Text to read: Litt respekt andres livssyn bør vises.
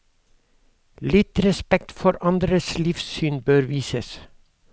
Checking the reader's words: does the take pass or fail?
fail